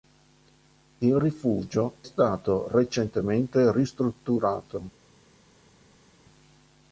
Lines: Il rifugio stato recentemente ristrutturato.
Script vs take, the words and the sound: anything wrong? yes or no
no